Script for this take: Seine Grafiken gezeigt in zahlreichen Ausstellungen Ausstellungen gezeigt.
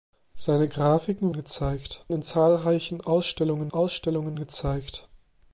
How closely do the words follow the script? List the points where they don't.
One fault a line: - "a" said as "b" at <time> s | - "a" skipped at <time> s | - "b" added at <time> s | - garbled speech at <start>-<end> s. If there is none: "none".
none